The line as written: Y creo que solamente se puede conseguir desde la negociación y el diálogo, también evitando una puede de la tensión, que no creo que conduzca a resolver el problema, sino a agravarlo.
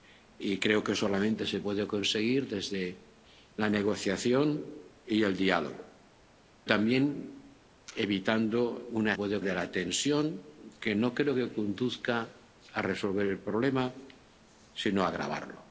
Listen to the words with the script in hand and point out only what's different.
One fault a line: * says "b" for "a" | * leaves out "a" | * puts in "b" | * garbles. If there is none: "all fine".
all fine